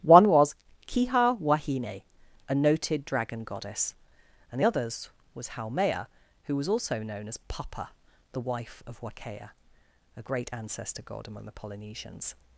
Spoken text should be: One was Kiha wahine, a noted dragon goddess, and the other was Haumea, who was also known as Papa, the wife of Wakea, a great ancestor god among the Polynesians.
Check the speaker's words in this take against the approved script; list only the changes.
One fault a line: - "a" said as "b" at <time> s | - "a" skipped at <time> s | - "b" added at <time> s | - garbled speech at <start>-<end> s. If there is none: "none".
- "other" said as "others" at 4.6 s